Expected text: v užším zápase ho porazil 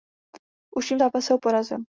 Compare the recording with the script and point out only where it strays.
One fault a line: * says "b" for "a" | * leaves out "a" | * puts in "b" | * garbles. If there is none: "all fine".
all fine